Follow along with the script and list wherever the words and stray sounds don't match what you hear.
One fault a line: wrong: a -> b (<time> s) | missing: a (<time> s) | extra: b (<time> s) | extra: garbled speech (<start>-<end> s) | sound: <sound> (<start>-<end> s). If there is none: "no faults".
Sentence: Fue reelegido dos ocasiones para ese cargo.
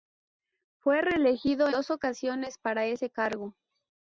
no faults